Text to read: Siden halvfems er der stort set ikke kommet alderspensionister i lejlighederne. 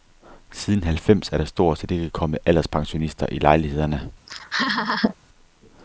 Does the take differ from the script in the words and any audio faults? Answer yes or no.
yes